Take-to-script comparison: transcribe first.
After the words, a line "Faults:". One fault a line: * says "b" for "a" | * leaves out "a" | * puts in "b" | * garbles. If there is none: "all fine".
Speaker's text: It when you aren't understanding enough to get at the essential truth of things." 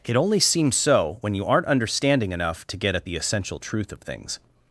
It only seems so when you aren't understanding enough to get at the essential truth of things."
Faults:
* puts in "only seems so"